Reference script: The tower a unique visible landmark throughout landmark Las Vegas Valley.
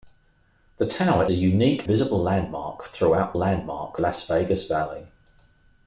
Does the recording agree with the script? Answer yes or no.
yes